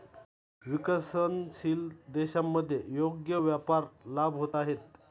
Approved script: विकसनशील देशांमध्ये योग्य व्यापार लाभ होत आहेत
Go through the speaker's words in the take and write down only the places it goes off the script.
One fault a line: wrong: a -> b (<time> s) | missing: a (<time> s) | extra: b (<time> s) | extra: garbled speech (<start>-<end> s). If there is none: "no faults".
no faults